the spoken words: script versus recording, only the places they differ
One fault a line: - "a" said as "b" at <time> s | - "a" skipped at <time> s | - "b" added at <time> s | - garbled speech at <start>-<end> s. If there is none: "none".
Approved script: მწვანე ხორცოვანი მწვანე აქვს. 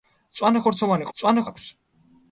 none